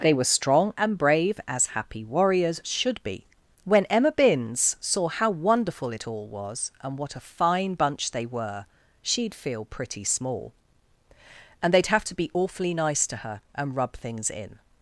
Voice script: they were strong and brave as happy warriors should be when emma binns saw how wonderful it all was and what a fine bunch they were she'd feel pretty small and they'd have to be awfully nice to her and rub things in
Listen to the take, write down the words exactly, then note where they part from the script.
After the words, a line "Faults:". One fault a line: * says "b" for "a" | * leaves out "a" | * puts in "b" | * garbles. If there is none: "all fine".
they were strong and brave as happy warriors should be when emma binns saw how wonderful it all was and what a fine bunch they were she'd feel pretty small and they'd have to be awfully nice to her and rub things in
Faults:
all fine